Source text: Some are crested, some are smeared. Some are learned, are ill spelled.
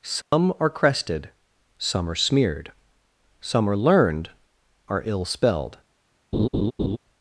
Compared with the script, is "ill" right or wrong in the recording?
right